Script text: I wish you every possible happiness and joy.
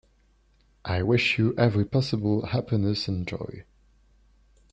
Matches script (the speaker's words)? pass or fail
pass